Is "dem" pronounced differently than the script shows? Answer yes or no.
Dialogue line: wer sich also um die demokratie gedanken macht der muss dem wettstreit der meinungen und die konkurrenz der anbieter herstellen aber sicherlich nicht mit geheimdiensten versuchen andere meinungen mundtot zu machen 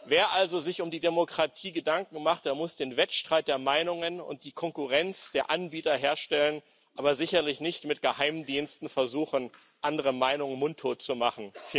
yes